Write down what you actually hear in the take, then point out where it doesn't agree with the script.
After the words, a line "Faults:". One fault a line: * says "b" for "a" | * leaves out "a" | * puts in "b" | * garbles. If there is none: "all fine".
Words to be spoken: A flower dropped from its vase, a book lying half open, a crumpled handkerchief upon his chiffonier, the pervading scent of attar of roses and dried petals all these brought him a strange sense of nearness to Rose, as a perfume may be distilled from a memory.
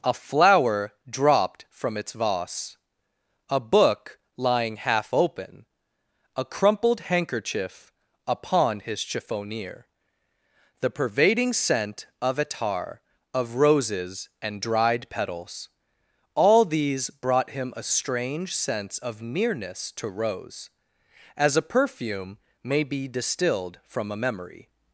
A flower dropped from its vase, a book lying half open, a crumpled handkerchief upon his chiffonier, the pervading scent of attar of roses and dried petals all these brought him a strange sense of nearness to Rose, as a perfume may be distilled from a memory.
Faults:
all fine